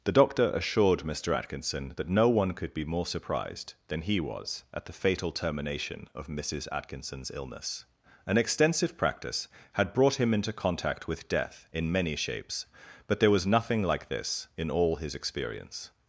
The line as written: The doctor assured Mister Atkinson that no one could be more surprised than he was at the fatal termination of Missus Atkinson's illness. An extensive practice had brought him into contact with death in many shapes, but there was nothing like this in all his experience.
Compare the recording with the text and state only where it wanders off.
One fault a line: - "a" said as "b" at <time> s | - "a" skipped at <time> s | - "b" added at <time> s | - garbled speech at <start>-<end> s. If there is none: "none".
none